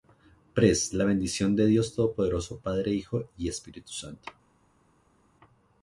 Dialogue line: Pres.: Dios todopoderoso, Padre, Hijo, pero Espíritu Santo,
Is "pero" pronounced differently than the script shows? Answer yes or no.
yes